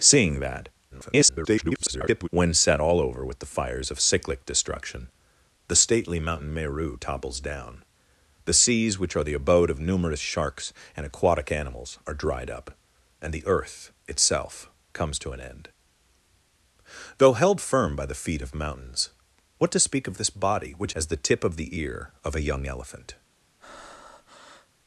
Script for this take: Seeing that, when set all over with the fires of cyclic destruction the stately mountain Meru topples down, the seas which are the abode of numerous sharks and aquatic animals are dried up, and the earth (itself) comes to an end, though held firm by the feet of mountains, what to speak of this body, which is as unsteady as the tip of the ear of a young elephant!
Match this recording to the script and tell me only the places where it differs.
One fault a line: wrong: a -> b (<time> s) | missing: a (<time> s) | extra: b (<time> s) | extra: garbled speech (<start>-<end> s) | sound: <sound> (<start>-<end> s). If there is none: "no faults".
extra: garbled speech (0.9-2.3 s)
missing: is as unsteady (21.0 s)
sound: breath (23.6-24.7 s)